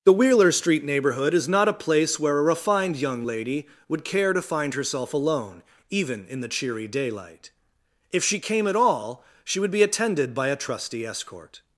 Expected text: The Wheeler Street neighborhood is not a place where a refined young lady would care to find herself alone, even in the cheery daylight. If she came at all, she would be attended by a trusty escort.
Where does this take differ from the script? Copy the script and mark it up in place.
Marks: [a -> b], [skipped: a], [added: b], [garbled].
The Wheeler Street neighborhood is not a place where a refined young lady would care to find herself alone, even in the cheery daylight. If she came at all, she would be attended by a trusty escort.